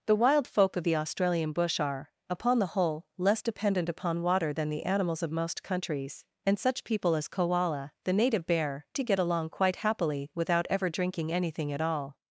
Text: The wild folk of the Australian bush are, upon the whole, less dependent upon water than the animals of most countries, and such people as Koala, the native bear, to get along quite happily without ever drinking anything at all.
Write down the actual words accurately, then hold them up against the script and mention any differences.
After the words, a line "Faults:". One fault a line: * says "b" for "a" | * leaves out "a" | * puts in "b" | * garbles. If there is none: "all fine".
The wild folk of the Australian bush are, upon the whole, less dependent upon water than the animals of most countries, and such people as Koala, the native bear, to get along quite happily without ever drinking anything at all.
Faults:
all fine